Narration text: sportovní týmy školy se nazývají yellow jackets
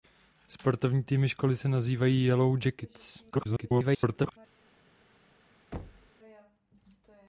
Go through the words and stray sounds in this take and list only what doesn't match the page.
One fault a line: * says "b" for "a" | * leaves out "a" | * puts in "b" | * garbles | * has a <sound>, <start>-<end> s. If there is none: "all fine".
* garbles
* has a thud, 5.7-6.1 s